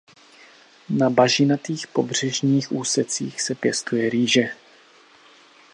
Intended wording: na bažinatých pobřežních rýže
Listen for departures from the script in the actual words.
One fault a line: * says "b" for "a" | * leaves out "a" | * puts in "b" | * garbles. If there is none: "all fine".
* puts in "úsecích se pěstuje"